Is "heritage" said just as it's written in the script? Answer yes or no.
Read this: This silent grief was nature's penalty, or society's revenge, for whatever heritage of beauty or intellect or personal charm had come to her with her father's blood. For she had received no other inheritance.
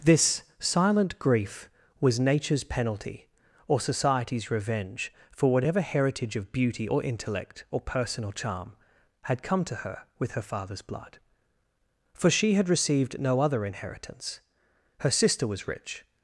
yes